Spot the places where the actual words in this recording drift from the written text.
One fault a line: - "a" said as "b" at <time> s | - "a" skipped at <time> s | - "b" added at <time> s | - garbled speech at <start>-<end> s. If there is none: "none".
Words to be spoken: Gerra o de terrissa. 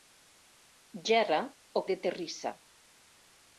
none